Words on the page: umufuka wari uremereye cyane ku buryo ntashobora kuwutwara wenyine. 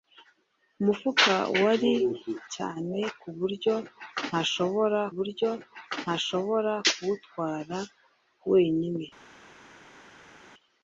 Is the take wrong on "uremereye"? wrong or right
wrong